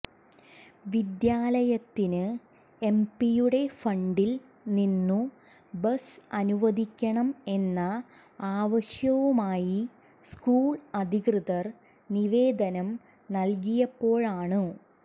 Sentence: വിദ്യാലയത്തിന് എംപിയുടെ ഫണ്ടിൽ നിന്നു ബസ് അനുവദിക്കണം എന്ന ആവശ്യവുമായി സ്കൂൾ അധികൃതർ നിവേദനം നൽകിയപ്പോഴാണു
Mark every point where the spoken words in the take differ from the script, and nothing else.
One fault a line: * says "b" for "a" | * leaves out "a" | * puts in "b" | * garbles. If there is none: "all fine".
all fine